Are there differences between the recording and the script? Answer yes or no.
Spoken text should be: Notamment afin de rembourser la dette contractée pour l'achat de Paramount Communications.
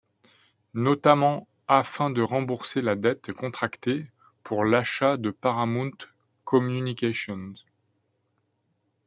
no